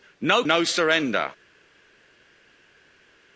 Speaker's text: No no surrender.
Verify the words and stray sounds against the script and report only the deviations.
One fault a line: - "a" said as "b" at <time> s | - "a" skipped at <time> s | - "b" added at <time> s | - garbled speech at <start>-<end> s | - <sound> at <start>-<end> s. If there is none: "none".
none